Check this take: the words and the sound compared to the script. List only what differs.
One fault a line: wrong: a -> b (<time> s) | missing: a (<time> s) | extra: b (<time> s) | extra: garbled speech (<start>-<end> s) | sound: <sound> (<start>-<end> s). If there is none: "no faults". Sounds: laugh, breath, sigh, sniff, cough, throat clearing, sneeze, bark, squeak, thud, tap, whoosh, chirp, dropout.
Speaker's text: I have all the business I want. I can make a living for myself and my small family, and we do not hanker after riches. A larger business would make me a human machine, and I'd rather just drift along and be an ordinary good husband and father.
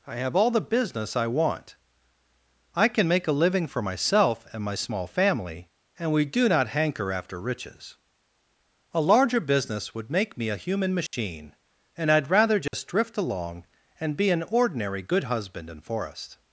sound: dropout (11.1-11.1 s)
sound: dropout (12.7-12.7 s)
wrong: and father -> in forrest (15.7 s)